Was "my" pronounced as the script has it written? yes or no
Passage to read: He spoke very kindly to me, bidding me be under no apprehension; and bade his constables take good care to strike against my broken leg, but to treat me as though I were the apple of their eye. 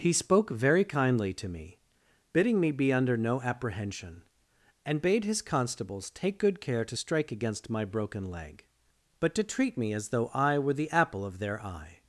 yes